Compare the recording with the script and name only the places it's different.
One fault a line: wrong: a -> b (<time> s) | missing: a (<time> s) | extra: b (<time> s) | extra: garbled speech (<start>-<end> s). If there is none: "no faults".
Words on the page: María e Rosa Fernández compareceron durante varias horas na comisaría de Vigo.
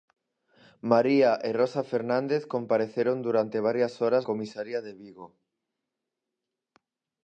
missing: na (4.2 s)